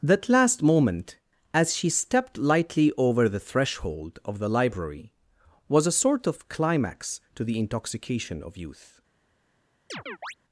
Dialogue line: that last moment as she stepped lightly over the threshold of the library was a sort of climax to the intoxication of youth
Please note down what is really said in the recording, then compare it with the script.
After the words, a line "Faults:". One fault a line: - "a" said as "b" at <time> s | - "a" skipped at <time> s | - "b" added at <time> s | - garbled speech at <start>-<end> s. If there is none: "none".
that last moment as she stepped lightly over the threshold of the library was a sort of climax to the intoxication of youth
Faults:
none